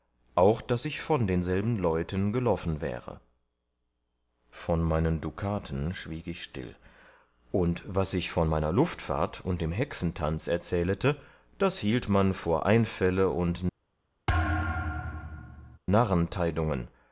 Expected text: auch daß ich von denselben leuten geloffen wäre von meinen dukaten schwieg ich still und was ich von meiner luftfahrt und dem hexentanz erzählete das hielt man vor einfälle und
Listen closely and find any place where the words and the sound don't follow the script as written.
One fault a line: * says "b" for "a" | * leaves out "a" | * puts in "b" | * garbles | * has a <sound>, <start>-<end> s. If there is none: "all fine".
* has a thud, 14.3-15.8 s